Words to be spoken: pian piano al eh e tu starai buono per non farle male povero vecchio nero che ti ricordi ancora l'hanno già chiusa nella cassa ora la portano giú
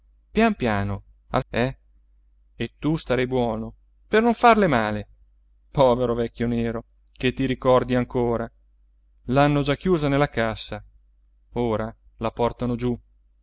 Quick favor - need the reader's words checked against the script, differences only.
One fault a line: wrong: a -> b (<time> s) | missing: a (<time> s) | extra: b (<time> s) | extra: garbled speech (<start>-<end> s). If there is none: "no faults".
no faults